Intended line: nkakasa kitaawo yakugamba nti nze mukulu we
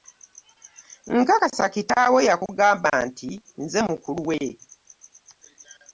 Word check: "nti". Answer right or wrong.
right